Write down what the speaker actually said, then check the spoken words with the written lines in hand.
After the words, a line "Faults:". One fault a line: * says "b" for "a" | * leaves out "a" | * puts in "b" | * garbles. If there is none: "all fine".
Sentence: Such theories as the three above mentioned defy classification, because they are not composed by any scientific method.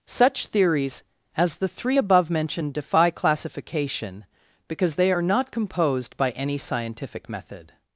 Such theories as the three above mentioned defy classification, because they are not composed by any scientific method.
Faults:
all fine